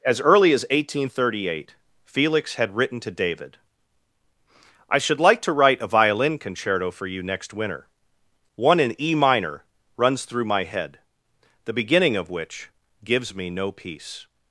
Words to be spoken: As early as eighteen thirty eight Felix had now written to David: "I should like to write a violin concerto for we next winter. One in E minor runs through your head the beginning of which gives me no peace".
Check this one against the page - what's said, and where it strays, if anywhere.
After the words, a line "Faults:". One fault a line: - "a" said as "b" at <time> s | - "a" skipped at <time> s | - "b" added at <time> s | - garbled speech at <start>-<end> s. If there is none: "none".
As early as eighteen thirty eight Felix had written to David: "I should like to write a violin concerto for you next winter. One in E minor runs through my head the beginning of which gives me no peace".
Faults:
- "now" skipped at 2.8 s
- "we" said as "you" at 7.0 s
- "your" said as "my" at 10.4 s